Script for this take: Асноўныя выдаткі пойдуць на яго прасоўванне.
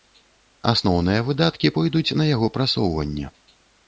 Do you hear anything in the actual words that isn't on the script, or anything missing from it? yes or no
no